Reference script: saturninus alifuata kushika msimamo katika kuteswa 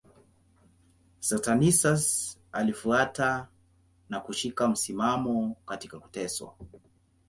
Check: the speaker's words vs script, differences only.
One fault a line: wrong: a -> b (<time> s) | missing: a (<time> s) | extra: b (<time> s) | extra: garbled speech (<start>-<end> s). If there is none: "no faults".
extra: na (4.1 s)